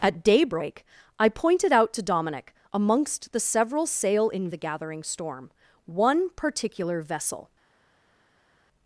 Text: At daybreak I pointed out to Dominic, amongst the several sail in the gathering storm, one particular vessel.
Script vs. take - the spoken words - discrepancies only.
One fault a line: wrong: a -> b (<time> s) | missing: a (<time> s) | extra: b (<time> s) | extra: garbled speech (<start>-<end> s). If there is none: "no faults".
no faults